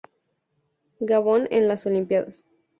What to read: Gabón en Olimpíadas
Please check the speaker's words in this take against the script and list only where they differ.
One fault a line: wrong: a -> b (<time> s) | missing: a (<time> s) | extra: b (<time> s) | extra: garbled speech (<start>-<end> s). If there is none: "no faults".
extra: las (1.7 s)